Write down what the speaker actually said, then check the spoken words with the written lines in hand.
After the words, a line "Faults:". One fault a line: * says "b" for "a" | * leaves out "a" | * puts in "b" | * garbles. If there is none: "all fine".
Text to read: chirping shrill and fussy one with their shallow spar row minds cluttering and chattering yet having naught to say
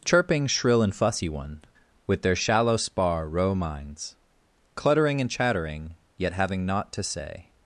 chirping shrill and fussy one with their shallow spar row minds cluttering and chattering yet having naught to say
Faults:
all fine